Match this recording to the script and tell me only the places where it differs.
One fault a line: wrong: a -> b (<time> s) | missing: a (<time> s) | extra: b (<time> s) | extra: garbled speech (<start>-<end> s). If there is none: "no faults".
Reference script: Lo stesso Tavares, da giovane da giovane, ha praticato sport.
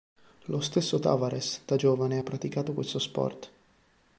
missing: da giovane (2.2 s)
extra: questo (2.7 s)